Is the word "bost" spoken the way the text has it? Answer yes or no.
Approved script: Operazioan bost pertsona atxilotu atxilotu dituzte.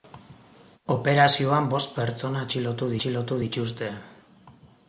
yes